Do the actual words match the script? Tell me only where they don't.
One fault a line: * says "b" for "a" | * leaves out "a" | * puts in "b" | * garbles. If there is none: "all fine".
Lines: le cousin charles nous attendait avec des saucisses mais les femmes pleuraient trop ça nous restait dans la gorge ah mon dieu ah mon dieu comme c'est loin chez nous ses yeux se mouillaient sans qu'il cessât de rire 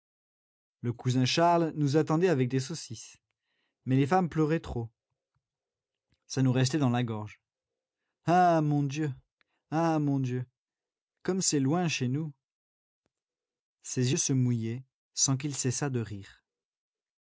all fine